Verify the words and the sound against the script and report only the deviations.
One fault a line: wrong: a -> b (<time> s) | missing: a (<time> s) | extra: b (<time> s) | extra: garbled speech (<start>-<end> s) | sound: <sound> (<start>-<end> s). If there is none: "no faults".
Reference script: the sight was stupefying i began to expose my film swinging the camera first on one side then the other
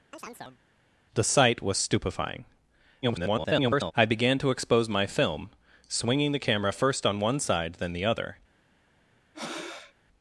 sound: chirp (0.1-0.6 s)
extra: garbled speech (3.0-3.9 s)
sound: breath (9.3-9.9 s)